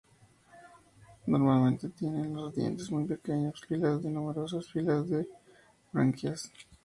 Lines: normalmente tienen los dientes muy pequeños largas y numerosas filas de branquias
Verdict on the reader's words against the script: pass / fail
fail